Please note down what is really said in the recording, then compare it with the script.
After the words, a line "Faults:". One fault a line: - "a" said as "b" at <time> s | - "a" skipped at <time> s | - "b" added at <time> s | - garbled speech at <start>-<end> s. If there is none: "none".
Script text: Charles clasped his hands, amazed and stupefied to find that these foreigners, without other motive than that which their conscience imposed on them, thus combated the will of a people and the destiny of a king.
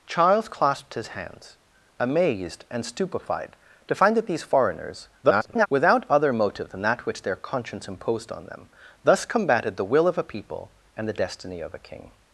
Charles clasped his hands, amazed and stupefied to find that these foreigners, [garbled] without other motive than that which their conscience imposed on them, thus combated the will of a people and the destiny of a king.
Faults:
- garbled speech at 5.2-5.7 s